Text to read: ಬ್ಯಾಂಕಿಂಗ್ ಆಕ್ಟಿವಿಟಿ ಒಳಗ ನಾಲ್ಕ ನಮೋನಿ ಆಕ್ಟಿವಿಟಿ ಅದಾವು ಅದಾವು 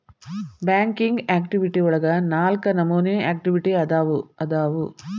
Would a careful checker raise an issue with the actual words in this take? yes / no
no